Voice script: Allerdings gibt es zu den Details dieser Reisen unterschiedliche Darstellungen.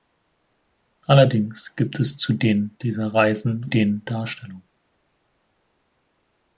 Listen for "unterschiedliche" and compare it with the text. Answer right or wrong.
wrong